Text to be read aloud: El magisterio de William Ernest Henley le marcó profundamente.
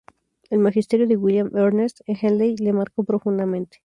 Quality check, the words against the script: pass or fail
pass